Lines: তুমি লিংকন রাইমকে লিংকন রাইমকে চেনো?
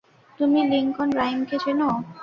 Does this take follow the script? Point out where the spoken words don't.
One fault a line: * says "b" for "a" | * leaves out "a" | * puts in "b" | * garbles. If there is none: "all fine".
* leaves out "লিংকন রাইমকে"